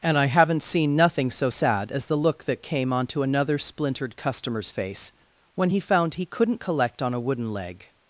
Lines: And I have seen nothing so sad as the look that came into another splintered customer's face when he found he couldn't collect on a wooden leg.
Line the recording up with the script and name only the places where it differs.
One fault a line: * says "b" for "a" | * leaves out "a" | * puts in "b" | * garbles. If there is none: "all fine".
* says "haven't" for "have"
* says "onto" for "into"